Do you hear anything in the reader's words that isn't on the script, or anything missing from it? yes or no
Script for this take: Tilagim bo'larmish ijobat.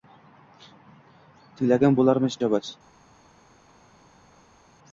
no